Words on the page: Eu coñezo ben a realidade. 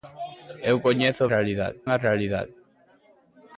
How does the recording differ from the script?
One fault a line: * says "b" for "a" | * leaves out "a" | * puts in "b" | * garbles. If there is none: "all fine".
* says "realidade" for "ben"